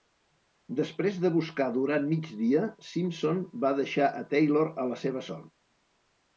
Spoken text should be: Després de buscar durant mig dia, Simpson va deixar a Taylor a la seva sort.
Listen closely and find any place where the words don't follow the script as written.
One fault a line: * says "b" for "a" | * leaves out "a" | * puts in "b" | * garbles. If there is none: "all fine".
all fine